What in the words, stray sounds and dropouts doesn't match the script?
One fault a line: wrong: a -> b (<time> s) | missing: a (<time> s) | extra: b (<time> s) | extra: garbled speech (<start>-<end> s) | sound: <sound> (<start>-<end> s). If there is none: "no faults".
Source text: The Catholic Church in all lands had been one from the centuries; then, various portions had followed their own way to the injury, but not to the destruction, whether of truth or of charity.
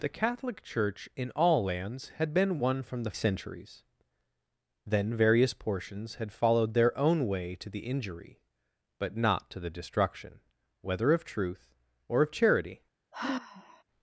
sound: sigh (13.1-13.8 s)